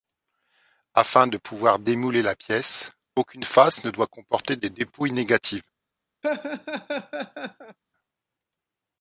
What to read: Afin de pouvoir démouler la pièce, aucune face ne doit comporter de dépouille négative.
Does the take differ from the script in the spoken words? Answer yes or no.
no